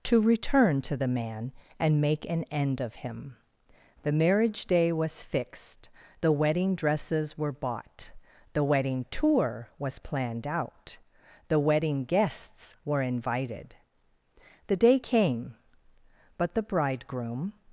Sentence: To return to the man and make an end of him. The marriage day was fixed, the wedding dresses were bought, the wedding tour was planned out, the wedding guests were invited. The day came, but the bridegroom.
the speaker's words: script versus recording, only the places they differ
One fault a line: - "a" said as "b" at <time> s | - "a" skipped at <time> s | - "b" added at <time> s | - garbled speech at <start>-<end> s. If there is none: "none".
none